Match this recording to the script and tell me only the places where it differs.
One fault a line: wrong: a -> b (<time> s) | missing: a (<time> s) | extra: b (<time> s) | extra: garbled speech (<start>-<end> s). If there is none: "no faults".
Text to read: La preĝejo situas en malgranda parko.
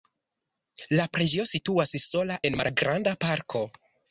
extra: sola (2.1 s)